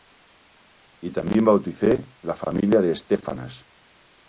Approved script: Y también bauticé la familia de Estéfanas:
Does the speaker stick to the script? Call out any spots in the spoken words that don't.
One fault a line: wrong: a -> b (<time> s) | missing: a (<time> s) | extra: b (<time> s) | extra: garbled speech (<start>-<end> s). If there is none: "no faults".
no faults